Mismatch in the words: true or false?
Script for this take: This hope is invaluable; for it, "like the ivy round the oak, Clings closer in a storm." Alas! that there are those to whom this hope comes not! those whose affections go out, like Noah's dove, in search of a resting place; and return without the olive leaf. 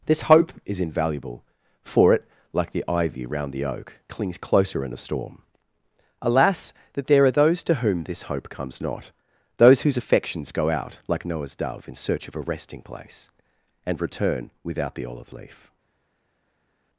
false